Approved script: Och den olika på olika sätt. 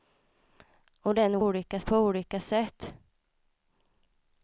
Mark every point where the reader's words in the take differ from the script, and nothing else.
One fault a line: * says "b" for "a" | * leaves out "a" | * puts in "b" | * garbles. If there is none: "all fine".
all fine